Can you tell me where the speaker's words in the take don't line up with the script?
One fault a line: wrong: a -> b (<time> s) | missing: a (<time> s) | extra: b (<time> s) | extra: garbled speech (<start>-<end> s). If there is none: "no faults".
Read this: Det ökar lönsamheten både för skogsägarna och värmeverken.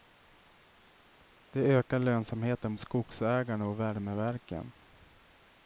missing: både för (2.8 s)